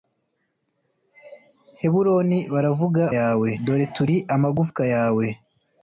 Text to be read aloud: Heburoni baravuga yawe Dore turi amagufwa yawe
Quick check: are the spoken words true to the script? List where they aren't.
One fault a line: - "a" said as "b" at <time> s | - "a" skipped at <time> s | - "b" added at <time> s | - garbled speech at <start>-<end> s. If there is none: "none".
none